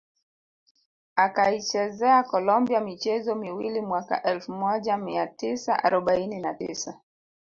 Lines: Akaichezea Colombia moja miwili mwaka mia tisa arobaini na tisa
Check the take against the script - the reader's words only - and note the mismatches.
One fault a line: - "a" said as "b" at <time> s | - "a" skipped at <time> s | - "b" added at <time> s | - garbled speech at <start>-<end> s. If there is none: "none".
- "moja" said as "michezo" at 2.8 s
- "elfu moja" added at 4.2 s